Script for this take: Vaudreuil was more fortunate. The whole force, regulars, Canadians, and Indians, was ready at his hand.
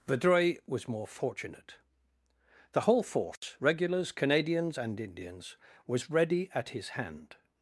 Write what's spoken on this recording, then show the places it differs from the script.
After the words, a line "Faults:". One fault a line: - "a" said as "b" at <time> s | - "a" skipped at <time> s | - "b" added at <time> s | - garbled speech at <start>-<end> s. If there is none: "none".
Vaudreuil was more fortunate. The whole force, regulars, Canadians, and Indians, was ready at his hand.
Faults:
none